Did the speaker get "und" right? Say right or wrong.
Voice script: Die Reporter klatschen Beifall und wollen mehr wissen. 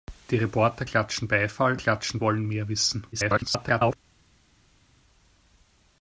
wrong